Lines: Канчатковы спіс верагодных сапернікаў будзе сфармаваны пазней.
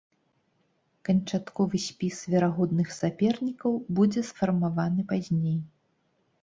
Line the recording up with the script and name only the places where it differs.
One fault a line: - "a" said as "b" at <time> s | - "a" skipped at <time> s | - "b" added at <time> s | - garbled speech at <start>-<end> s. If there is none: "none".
none